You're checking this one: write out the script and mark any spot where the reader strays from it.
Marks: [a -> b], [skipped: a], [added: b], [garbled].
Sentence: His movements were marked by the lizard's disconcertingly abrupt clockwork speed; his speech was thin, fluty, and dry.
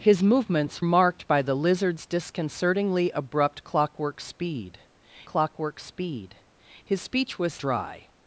His movements [skipped: were] marked by the lizard's disconcertingly abrupt clockwork speed; [added: clockwork speed] his speech was [skipped: thin, fluty, and] dry.